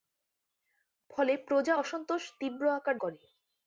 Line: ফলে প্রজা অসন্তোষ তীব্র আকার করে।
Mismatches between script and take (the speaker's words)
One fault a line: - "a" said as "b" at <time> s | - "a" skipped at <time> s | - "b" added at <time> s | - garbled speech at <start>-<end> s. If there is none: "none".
none